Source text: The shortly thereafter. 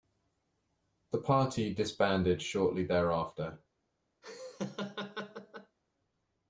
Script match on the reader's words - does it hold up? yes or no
no